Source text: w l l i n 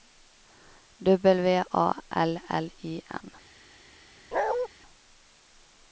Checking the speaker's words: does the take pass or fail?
fail